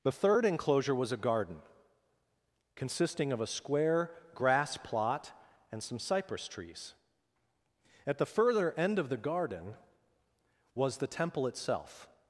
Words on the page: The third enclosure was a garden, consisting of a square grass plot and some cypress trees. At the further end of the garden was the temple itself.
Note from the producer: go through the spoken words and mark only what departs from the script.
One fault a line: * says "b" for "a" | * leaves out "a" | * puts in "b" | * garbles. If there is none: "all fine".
all fine